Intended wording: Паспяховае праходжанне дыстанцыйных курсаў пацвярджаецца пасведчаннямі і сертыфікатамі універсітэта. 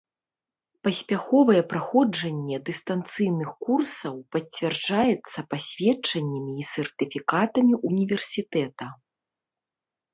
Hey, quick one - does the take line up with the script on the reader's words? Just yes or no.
yes